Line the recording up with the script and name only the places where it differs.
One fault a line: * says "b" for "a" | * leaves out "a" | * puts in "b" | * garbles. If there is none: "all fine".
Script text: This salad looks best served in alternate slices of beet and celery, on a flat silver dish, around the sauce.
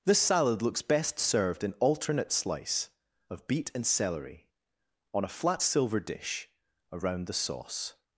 * says "slice" for "slices"